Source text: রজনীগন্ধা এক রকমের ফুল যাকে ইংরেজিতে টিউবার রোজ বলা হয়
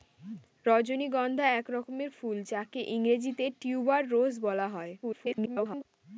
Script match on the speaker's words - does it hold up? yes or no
no